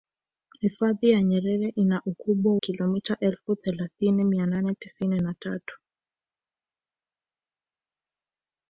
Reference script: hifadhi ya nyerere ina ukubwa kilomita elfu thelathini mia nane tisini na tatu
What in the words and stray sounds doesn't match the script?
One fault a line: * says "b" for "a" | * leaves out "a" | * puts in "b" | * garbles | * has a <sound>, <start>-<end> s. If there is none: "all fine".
all fine